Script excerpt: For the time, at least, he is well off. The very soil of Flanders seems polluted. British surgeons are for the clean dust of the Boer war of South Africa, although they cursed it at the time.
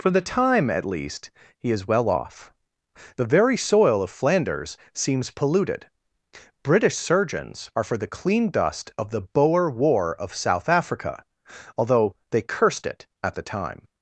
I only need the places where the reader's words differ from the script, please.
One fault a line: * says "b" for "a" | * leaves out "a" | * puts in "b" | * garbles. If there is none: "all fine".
all fine